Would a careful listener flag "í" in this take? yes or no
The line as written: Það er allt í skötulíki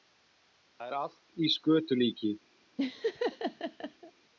no